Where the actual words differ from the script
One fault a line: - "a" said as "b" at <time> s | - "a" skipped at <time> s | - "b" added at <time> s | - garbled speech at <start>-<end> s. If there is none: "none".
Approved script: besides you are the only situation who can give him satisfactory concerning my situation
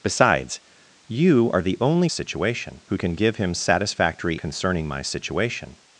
none